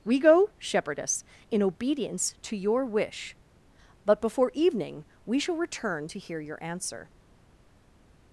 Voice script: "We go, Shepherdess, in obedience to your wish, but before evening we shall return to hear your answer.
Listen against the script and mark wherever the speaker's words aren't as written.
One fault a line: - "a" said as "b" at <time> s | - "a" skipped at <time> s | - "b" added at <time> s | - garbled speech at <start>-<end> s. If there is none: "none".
none